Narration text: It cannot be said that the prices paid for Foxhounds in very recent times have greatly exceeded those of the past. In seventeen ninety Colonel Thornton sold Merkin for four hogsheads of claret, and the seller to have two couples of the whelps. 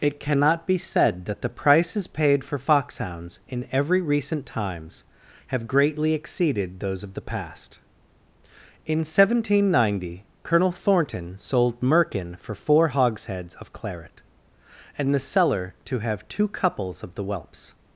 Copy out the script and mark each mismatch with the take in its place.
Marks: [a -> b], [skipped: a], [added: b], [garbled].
It cannot be said that the prices paid for Foxhounds in [very -> every] recent times have greatly exceeded those of the past. In seventeen ninety Colonel Thornton sold Merkin for four hogsheads of claret, and the seller to have two couples of the whelps.